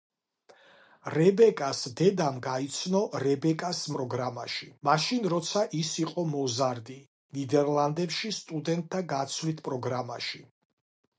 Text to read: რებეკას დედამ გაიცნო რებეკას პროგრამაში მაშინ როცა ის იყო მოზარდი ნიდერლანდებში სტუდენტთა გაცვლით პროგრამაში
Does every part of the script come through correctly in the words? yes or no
yes